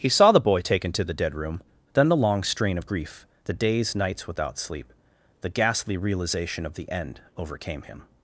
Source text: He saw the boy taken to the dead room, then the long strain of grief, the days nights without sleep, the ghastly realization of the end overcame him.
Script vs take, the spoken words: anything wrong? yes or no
no